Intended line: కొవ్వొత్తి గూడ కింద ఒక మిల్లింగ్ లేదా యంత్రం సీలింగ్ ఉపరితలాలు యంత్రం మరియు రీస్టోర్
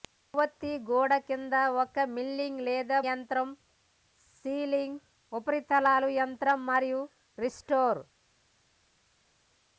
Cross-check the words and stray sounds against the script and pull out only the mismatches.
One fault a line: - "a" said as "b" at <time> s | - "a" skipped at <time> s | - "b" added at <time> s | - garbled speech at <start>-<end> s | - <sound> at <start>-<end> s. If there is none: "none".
none